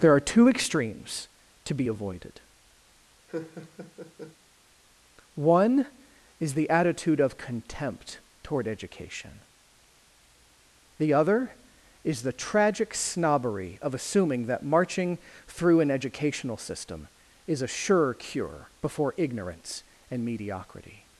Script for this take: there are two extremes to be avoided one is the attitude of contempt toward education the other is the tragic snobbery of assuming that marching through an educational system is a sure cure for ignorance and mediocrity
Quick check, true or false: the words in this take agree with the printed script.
false